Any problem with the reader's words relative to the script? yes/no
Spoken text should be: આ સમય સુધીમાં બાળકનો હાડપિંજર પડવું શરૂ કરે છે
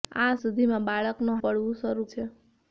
yes